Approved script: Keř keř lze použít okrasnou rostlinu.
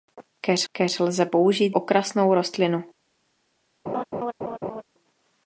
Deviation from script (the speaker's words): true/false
false